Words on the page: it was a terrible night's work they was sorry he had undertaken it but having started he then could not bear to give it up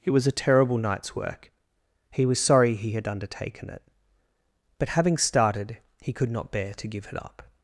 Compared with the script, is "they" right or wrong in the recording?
wrong